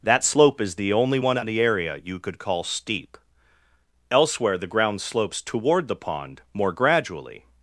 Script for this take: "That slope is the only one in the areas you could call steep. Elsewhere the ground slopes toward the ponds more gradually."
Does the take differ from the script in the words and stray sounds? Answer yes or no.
yes